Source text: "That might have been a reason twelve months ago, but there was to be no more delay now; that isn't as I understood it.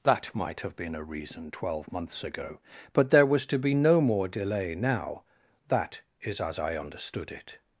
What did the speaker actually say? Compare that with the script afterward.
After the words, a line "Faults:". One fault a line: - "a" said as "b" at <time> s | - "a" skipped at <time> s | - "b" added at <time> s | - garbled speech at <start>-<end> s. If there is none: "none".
"That might have been a reason twelve months ago, but there was to be no more delay now; that is as I understood it.
Faults:
- "isn't" said as "is" at 6.2 s